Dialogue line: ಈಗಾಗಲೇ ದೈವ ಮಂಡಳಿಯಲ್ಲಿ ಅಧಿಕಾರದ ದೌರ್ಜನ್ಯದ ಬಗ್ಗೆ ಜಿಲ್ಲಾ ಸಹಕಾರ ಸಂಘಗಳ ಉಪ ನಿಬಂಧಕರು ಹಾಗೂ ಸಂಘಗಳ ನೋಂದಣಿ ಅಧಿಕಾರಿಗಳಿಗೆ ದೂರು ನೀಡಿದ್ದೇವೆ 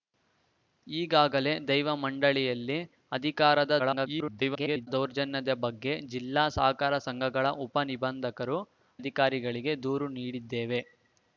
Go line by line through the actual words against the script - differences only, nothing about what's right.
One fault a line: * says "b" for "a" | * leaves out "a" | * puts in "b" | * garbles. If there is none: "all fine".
* garbles
* leaves out "ಹಾಗೂ ಸಂಘಗಳ ನೋಂದಣಿ"